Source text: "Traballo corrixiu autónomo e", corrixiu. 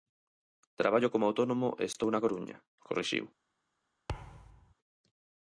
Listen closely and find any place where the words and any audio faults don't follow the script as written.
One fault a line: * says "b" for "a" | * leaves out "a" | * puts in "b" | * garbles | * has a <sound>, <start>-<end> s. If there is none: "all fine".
* says "como" for "corrixiu"
* puts in "estou na Coruña"
* has a thud, 4.1-4.7 s